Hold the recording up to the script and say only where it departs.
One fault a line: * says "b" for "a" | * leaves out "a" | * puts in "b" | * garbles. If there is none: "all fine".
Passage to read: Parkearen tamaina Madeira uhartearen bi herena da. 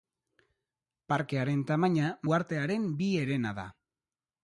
* leaves out "Madeira"